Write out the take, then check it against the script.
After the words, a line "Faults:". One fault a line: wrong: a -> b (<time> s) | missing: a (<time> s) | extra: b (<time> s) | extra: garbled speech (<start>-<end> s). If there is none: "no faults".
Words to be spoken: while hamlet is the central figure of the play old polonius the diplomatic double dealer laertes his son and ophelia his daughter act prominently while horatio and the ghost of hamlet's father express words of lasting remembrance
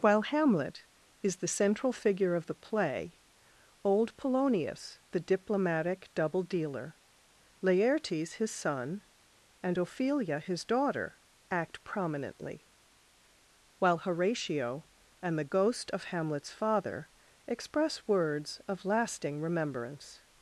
while hamlet is the central figure of the play old polonius the diplomatic double dealer laertes his son and ophelia his daughter act prominently while horatio and the ghost of hamlet's father express words of lasting remembrance
Faults:
no faults